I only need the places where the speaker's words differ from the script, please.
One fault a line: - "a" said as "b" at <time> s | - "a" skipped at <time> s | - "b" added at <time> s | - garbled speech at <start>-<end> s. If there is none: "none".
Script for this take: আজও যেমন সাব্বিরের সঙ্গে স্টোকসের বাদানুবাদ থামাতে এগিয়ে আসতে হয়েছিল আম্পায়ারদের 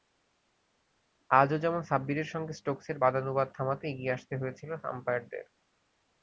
none